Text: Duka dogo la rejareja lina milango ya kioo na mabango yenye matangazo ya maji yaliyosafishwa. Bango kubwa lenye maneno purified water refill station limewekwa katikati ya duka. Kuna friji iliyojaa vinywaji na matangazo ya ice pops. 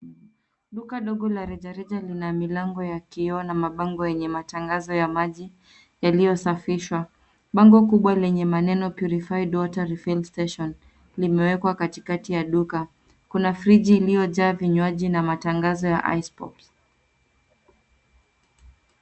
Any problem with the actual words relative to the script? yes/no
no